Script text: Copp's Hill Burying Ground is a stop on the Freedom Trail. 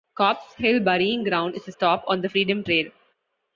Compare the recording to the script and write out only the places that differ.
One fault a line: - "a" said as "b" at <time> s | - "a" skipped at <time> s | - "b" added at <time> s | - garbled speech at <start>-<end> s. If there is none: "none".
none